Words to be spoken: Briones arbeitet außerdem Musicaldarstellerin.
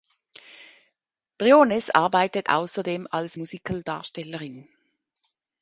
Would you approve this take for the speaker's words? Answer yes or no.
no